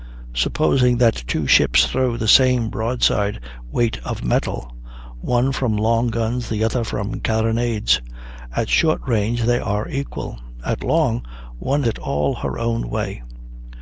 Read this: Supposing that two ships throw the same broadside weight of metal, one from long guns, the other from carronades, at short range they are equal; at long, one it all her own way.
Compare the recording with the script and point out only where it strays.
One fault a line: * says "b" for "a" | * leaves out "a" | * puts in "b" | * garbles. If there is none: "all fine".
all fine